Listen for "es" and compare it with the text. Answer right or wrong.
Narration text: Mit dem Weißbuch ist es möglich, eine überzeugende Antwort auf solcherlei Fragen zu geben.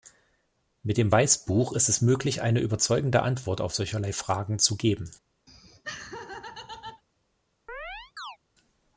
right